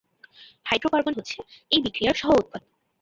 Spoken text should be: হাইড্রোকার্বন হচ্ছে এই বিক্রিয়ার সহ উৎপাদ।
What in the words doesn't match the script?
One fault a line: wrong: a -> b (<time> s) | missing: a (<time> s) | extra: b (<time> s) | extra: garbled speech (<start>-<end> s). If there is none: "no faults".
no faults